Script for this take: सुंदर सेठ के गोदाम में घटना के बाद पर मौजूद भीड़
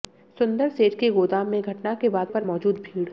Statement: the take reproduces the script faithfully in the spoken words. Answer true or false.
true